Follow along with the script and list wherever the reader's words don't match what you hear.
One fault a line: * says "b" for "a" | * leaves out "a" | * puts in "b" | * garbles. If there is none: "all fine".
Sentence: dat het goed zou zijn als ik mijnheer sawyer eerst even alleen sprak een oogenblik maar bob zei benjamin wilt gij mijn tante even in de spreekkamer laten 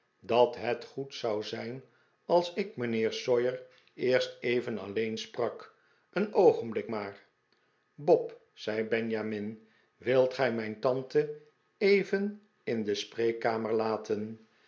all fine